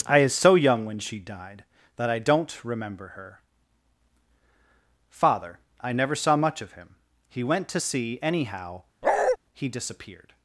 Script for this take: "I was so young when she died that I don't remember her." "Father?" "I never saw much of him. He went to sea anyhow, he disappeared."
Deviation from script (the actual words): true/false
true